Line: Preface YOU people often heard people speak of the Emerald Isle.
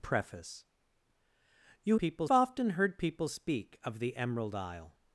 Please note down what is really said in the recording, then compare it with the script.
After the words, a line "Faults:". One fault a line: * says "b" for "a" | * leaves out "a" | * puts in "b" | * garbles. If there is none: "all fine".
Preface YOU people often heard people speak of the Emerald Isle.
Faults:
all fine